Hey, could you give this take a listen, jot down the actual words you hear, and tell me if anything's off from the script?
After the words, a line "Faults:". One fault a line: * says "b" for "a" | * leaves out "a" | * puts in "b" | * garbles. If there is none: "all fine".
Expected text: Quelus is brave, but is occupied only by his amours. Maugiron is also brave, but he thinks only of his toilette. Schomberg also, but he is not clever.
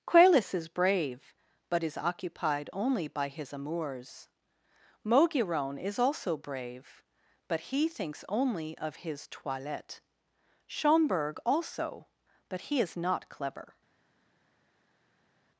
Quelus is brave, but is occupied only by his amours. Maugiron is also brave, but he thinks only of his toilette. Schomberg also, but he is not clever.
Faults:
all fine